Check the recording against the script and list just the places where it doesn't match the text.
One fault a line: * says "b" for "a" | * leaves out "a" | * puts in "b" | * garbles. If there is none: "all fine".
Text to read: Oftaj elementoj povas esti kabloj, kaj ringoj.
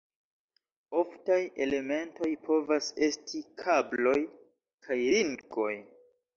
all fine